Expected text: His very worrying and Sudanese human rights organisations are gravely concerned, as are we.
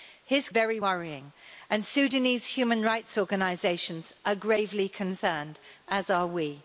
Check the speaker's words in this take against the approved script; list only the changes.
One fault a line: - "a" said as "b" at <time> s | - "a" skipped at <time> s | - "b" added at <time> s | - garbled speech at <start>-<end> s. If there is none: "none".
none